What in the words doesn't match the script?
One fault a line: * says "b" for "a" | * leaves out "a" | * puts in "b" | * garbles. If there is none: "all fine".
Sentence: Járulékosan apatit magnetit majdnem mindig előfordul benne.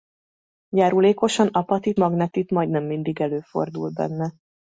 all fine